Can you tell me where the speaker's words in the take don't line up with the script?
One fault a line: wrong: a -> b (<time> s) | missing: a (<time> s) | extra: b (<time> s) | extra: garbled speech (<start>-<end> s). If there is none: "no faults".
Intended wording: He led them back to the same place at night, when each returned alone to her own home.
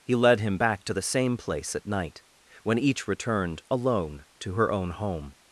wrong: them -> him (0.4 s)